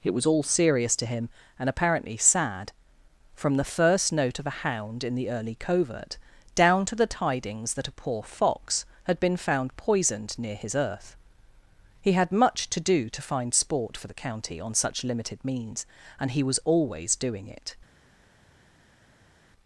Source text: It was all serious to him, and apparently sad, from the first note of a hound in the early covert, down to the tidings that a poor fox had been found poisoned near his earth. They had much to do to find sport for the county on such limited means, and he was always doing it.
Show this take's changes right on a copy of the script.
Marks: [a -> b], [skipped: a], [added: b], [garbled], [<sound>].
It was all serious to him, and apparently sad, from the first note of a hound in the early covert, down to the tidings that a poor fox had been found poisoned near his earth. [They -> He] had much to do to find sport for the county on such limited means, and he was always doing it.